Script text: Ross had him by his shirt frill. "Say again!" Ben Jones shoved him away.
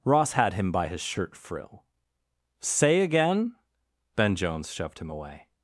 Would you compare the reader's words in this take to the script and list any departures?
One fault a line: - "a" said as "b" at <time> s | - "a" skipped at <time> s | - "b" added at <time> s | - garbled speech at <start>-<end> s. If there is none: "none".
none